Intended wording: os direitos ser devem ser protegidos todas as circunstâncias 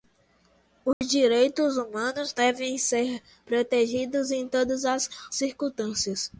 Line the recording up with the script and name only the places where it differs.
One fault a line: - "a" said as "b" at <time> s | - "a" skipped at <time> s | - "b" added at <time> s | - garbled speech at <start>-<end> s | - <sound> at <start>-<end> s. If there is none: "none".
- dropout at 0.9-1.0 s
- "ser" said as "humanos" at 1.8 s
- "em" added at 4.3 s